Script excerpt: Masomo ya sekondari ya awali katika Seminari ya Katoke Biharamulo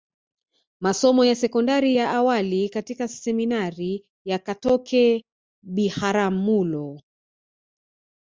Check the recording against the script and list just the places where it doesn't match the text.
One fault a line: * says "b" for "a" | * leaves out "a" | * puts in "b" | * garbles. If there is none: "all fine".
all fine